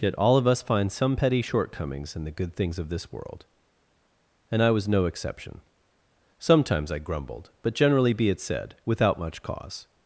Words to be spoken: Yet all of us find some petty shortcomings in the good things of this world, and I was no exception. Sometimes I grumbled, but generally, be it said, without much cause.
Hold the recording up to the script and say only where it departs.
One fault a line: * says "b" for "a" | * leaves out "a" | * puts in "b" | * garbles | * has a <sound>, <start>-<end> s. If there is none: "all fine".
all fine